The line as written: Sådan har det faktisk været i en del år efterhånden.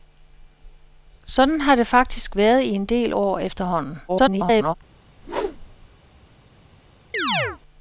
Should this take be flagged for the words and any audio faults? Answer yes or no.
yes